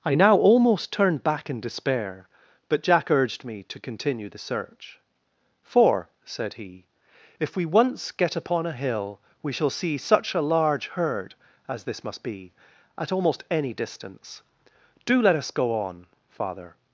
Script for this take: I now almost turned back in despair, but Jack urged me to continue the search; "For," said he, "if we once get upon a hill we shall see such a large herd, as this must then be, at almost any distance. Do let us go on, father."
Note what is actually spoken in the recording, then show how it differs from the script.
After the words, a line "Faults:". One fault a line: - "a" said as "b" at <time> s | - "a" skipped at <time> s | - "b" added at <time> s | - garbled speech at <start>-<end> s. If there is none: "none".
I now almost turned back in despair, but Jack urged me to continue the search; "For," said he, "if we once get upon a hill we shall see such a large herd, as this must be, at almost any distance. Do let us go on, father."
Faults:
- "then" skipped at 12.2 s